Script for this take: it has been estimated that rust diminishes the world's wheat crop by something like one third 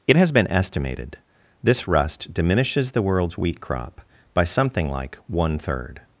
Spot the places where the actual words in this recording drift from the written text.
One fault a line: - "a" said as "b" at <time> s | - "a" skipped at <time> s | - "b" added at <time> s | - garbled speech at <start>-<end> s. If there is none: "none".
- "that" said as "this" at 1.6 s